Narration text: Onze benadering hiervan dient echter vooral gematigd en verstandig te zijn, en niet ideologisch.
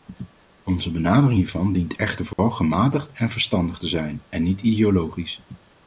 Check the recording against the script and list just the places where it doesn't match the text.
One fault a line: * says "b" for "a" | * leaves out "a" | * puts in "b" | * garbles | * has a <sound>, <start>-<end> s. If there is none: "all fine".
* has a dropout, 2.3-2.4 s